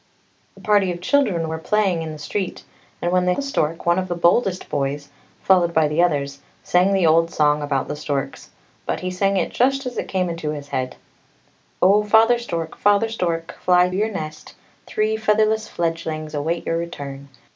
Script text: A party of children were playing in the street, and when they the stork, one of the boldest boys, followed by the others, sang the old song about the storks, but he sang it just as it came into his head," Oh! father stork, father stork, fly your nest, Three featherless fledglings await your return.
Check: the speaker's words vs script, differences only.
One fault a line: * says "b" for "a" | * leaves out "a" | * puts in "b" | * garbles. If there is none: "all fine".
all fine